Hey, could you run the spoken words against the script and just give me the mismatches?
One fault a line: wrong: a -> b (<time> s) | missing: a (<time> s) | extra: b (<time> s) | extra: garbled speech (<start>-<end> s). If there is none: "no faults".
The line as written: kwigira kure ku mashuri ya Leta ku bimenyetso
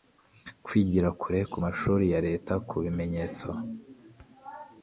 no faults